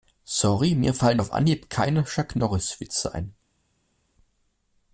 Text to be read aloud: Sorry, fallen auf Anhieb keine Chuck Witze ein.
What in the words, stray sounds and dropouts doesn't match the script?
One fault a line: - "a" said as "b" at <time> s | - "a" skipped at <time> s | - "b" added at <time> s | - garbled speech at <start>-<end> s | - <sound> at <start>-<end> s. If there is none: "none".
- "mir" added at 0.7 s
- "Norris" added at 2.4 s